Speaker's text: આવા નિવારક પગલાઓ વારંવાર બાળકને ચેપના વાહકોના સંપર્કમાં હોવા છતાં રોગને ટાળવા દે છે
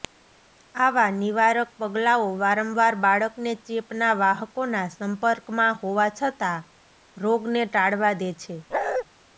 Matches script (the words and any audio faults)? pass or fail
fail